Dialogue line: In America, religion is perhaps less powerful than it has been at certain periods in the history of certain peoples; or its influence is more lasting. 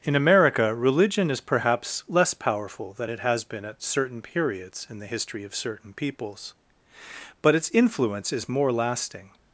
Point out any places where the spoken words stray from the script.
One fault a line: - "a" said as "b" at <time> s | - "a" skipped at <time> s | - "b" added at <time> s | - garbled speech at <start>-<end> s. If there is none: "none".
- "or" said as "but" at 7.4 s